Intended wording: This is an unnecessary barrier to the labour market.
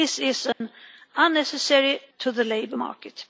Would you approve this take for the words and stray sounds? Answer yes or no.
no